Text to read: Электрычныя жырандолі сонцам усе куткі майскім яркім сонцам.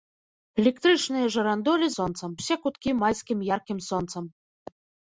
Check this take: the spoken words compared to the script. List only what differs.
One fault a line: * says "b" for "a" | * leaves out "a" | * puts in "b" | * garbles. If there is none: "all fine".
all fine